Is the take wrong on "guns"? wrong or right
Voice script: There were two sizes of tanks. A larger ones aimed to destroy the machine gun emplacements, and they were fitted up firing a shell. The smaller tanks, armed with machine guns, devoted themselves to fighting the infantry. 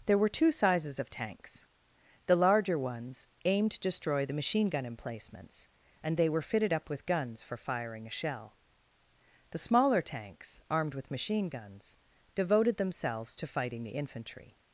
right